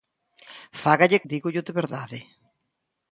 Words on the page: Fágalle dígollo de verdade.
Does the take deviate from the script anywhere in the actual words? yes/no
no